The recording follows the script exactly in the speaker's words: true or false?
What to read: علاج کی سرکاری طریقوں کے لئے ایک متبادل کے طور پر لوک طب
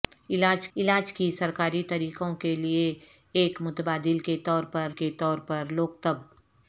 false